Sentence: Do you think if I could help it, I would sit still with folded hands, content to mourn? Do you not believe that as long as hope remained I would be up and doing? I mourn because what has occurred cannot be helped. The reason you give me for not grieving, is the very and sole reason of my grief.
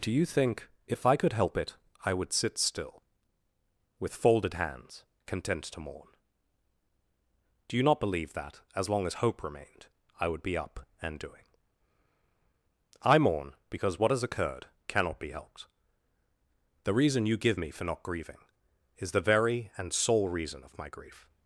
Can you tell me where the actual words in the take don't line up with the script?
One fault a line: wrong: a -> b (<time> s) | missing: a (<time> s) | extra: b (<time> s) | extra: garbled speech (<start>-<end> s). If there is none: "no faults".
no faults